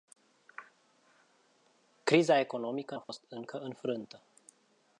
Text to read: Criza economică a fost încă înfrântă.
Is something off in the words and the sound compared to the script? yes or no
yes